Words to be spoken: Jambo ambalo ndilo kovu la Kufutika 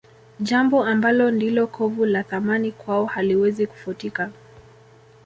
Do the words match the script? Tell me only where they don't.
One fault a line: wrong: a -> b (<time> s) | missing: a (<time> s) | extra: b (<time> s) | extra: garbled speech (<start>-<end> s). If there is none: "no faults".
extra: Thamani kwao haliwezi (2.2 s)